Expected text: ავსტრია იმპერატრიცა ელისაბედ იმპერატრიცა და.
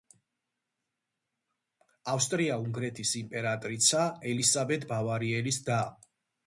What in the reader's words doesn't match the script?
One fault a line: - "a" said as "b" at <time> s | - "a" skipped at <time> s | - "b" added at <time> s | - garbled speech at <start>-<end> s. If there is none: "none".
- "უნგრეთის" added at 2.6 s
- "იმპერატრიცა" said as "ბავარიელის" at 5.0 s